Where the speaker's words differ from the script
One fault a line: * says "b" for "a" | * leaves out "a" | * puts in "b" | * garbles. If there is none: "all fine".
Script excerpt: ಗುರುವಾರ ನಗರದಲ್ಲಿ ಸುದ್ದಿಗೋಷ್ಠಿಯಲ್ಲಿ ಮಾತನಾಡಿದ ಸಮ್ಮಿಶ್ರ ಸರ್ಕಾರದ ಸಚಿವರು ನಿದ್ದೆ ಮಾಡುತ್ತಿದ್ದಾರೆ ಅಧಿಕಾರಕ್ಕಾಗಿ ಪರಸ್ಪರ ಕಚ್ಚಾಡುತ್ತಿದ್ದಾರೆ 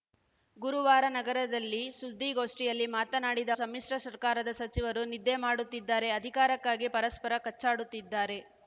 all fine